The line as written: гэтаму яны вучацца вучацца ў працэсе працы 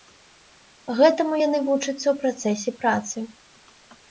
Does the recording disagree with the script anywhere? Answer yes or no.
yes